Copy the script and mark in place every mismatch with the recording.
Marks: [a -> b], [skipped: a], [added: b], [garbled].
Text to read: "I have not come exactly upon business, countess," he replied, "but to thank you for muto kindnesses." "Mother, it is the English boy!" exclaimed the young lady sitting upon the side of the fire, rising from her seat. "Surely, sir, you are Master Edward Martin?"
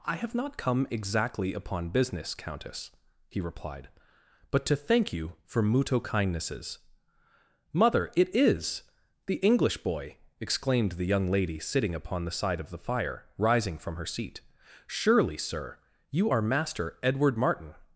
"I have not come exactly upon business, countess," he replied, "but to thank you for muto kindnesses." "Mother, it is the English boy!" exclaimed the young lady sitting upon the side of the fire, rising from her seat. "Surely, sir, you are Master Edward Martin?"